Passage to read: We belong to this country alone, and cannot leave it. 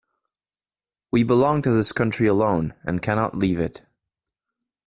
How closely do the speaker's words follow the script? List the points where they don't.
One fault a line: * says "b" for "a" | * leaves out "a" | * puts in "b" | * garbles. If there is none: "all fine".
all fine